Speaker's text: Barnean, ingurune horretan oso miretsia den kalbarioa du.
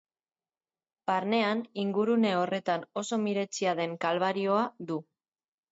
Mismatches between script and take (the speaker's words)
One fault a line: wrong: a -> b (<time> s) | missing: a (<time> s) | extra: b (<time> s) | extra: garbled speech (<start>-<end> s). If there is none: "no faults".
no faults